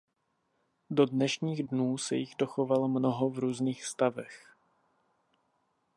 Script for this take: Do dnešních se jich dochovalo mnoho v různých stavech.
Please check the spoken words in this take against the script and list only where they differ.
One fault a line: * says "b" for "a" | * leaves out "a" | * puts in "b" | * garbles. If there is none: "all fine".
* puts in "dnů"